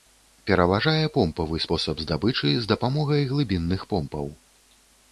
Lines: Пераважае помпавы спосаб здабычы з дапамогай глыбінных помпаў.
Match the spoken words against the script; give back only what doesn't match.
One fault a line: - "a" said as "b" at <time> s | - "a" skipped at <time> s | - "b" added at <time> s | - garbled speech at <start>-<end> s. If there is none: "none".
none